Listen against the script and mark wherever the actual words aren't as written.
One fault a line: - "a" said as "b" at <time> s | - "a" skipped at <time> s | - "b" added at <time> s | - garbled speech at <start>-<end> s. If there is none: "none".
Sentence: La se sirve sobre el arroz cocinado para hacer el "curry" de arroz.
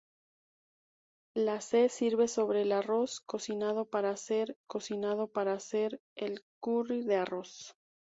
- "cocinado para hacer" added at 4.6 s